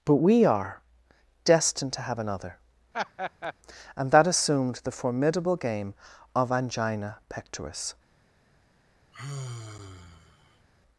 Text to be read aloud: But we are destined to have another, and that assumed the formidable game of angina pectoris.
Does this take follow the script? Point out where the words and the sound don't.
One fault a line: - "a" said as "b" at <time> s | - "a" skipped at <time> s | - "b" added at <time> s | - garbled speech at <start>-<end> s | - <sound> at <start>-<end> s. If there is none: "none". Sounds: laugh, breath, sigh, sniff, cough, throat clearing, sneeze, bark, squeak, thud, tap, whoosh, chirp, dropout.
- laugh at 2.9-3.5 s
- sigh at 9.1-10.7 s